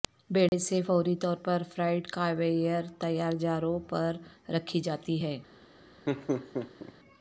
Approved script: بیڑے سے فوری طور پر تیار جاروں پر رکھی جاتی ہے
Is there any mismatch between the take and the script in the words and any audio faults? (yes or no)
yes